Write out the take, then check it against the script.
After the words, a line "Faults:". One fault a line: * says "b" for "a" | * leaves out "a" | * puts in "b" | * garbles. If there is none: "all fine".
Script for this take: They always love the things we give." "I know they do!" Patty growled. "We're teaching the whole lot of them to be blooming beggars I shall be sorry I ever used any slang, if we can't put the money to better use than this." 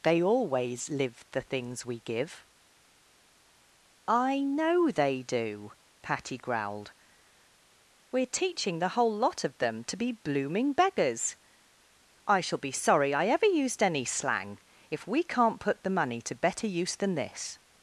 They always live the things we give." "I know they do!" Patty growled. "We're teaching the whole lot of them to be blooming beggars I shall be sorry I ever used any slang, if we can't put the money to better use than this."
Faults:
* says "live" for "love"